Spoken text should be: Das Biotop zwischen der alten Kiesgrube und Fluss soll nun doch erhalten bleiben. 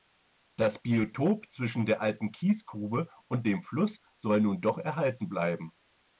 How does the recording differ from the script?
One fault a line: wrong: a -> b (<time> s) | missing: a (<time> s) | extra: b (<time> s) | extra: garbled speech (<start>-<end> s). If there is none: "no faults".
extra: dem (3.5 s)